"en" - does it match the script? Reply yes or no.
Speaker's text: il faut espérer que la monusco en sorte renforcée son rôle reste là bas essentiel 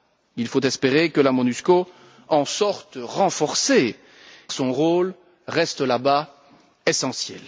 yes